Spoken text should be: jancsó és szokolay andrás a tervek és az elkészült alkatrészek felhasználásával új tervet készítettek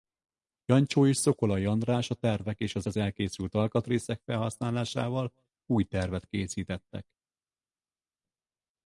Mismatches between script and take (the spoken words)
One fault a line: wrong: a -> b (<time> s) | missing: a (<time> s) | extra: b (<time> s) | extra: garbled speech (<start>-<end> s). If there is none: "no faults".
extra: az (2.9 s)